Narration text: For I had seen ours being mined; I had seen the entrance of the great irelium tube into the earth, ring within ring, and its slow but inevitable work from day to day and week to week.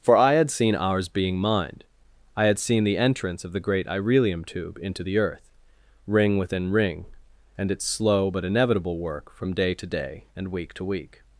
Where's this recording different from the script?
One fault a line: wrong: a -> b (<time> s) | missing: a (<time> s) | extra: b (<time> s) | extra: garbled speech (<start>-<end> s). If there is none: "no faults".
no faults